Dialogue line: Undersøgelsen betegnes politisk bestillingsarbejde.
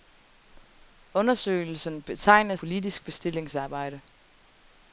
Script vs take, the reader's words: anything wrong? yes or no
no